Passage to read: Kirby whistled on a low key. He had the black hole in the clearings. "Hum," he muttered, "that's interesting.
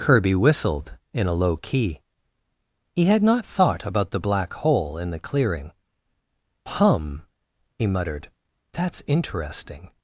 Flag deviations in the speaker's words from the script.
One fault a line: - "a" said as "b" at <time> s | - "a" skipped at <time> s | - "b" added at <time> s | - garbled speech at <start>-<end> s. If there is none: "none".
- "on" said as "in" at 1.1 s
- "not thought about" added at 3.2 s
- "clearings" said as "clearing" at 5.2 s